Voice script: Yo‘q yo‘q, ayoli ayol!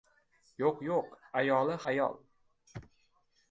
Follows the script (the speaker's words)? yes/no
yes